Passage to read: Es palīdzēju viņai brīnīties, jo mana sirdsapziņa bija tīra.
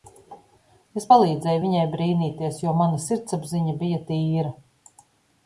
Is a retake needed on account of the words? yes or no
no